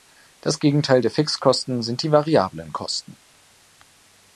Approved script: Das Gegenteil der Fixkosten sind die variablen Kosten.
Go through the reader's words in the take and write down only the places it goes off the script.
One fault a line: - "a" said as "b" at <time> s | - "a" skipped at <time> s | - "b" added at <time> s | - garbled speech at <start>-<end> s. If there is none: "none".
none